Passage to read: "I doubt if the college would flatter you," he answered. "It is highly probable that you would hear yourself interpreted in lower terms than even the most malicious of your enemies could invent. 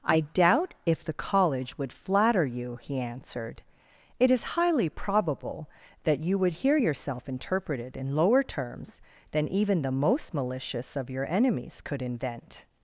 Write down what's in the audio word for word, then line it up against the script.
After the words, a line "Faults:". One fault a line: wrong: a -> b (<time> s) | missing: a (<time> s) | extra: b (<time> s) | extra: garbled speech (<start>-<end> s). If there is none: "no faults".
"I doubt if the college would flatter you," he answered. "It is highly probable that you would hear yourself interpreted in lower terms than even the most malicious of your enemies could invent.
Faults:
no faults